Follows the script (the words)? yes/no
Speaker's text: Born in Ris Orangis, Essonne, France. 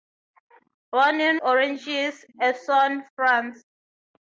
no